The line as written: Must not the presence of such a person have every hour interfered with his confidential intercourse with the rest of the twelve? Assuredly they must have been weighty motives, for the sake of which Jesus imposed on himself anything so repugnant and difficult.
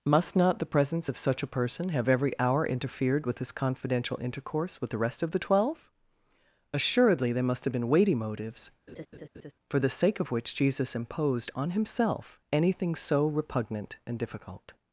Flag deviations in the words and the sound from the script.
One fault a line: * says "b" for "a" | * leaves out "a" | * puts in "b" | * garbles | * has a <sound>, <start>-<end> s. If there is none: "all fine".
* says "there" for "they"
* has a laugh, 8.9-9.5 s